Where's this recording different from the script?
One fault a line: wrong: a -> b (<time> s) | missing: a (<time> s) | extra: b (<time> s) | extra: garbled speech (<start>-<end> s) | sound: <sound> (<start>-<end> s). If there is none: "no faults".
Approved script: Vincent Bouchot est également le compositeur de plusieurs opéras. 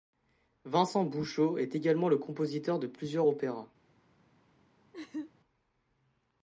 sound: laugh (4.9-5.3 s)